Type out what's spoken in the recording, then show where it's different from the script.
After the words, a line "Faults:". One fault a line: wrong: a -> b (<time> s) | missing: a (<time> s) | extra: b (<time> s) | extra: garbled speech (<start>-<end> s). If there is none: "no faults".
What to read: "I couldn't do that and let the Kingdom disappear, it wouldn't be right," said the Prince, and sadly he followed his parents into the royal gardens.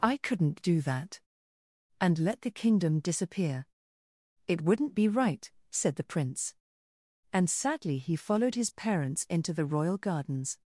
"I couldn't do that and let the Kingdom disappear, it wouldn't be right," said the Prince, and sadly he followed his parents into the royal gardens.
Faults:
no faults